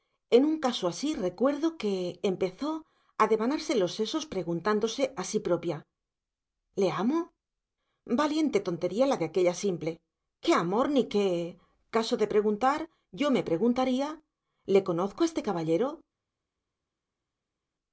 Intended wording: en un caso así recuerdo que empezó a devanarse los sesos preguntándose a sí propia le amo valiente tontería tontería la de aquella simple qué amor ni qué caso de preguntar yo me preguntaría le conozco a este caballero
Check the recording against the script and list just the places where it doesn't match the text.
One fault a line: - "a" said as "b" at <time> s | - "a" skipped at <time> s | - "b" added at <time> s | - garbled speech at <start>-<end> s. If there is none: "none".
- "tontería" skipped at 9.1 s